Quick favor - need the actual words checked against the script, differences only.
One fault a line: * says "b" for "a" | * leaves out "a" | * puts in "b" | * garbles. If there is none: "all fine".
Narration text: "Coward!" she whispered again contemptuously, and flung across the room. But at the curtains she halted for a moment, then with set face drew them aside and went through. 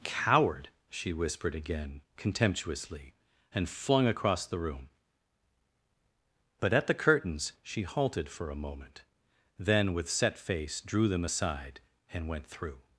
all fine